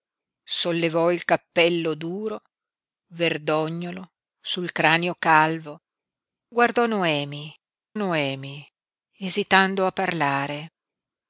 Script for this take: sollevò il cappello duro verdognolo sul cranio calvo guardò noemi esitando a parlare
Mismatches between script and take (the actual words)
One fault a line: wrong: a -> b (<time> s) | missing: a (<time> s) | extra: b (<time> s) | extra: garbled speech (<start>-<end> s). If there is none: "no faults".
extra: noemi (8.0 s)